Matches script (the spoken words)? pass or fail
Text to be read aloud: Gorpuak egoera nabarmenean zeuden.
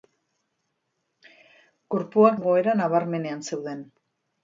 pass